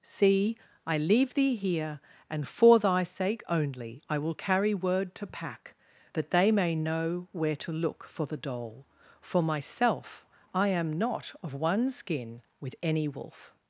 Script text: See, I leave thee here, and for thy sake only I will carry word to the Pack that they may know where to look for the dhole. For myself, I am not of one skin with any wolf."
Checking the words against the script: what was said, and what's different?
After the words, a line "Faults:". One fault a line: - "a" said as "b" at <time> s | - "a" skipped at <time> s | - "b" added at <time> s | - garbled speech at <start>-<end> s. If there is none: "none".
See, I leave thee here, and for thy sake only I will carry word to Pack that they may know where to look for the dhole. For myself, I am not of one skin with any wolf."
Faults:
- "the" skipped at 5.3 s